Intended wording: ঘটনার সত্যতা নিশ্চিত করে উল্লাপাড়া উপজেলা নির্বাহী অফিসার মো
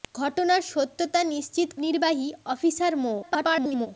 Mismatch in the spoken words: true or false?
true